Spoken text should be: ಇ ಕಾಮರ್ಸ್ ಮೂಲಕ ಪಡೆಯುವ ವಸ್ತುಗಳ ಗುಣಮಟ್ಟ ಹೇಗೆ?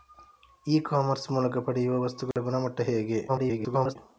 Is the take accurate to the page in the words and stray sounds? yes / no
no